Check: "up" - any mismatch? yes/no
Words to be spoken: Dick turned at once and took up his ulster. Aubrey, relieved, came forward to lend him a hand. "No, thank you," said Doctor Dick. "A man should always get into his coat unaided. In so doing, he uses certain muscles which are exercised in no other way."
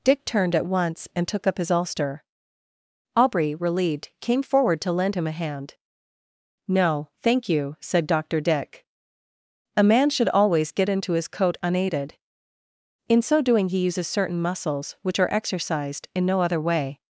no